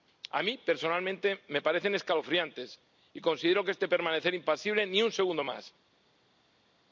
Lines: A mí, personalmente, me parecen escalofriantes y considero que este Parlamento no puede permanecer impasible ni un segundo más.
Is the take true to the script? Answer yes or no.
no